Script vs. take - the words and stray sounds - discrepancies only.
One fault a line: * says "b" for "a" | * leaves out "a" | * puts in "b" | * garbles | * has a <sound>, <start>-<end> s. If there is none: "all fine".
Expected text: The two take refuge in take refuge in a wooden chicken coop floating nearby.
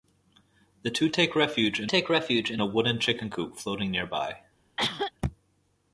* has a cough, 4.8-5.1 s